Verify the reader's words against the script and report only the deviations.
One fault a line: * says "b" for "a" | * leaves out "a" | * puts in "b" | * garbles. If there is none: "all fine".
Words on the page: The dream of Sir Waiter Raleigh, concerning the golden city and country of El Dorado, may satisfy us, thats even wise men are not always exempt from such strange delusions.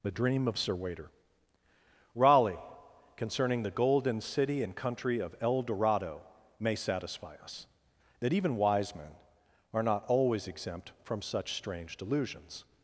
* says "that" for "thats"